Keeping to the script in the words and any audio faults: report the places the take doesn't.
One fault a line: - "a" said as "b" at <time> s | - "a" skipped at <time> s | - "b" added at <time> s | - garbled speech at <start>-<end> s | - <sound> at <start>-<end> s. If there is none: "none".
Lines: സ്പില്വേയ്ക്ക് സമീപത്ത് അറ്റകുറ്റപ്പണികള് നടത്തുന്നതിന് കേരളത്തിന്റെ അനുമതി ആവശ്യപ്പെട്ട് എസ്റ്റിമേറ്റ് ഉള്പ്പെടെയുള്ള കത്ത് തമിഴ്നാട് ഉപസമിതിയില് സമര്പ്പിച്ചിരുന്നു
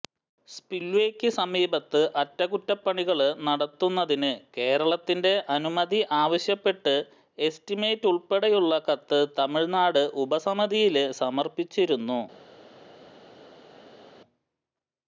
none